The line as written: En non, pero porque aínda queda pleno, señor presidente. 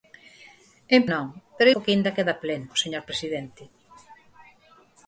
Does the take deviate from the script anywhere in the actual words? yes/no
no